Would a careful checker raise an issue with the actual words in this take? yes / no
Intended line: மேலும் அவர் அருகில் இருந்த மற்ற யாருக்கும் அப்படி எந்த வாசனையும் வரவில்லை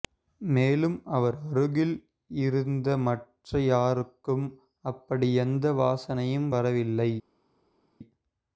no